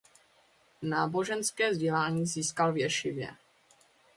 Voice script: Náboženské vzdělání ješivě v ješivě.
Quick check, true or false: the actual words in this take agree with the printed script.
false